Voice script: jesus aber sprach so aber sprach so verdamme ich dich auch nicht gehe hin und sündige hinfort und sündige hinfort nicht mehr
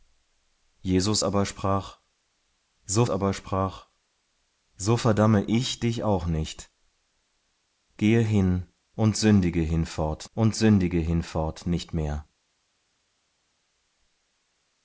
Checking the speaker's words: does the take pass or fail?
pass